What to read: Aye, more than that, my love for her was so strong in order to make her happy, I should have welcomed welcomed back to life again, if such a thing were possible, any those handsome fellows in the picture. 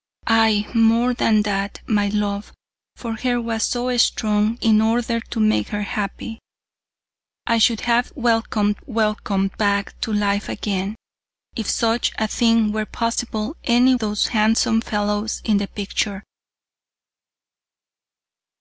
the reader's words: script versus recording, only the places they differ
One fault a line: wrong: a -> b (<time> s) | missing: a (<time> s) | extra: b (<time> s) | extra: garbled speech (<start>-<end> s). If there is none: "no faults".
no faults